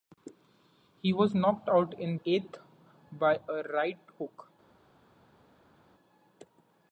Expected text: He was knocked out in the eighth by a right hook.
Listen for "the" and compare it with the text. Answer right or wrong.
wrong